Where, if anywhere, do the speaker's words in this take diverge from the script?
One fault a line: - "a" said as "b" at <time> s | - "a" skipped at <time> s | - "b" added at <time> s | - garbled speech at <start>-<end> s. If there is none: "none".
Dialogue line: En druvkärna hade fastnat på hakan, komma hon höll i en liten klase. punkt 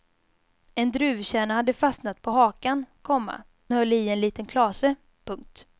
- "hon" skipped at 3.4 s